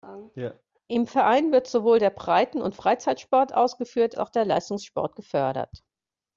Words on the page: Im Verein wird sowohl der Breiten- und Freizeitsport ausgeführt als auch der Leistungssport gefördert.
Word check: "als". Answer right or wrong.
wrong